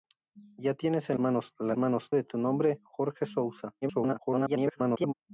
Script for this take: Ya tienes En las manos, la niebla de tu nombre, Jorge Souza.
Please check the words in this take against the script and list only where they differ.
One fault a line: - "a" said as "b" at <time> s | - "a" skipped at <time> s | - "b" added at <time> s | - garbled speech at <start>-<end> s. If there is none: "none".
- "las" skipped at 1.2 s
- "niebla" said as "manos" at 1.7 s
- garbled speech at 3.8-5.1 s